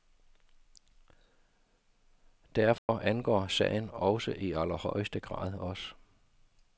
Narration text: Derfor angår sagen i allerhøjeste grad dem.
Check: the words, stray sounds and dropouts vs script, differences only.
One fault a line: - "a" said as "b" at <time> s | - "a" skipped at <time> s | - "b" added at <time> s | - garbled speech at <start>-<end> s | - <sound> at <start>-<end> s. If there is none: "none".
- dropout at 2.8-2.9 s
- "også" added at 3.9 s
- "dem" said as "os" at 5.5 s